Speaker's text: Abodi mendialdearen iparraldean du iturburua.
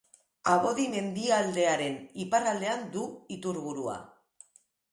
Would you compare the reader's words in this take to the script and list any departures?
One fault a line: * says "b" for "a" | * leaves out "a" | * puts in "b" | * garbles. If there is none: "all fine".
all fine